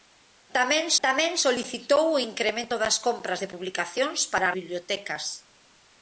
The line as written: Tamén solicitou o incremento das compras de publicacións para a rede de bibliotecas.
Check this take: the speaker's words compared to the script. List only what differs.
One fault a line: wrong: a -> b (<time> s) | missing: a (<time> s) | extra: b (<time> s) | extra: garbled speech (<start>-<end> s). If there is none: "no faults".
extra: tamén (1.1 s)
missing: rede de (4.5 s)